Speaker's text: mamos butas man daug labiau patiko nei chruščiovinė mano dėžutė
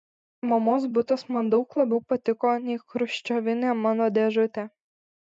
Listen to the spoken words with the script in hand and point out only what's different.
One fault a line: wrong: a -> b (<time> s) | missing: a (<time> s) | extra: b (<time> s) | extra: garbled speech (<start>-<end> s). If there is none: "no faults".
no faults